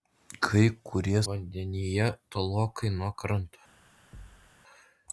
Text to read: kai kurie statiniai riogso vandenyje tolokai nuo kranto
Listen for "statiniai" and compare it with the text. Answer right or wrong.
wrong